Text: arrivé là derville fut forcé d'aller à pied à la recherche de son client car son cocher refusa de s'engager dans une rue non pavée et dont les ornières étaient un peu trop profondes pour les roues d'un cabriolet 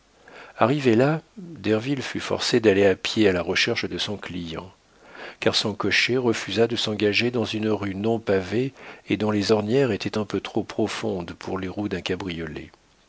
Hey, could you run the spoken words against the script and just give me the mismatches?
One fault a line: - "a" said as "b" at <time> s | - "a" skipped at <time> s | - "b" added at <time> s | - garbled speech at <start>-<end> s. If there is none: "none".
none